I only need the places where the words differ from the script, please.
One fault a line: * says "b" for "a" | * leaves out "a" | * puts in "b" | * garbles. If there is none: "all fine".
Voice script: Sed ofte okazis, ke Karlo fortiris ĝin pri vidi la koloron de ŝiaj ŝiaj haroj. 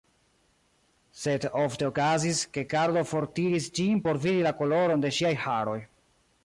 * says "por" for "pri"
* leaves out "ŝiaj"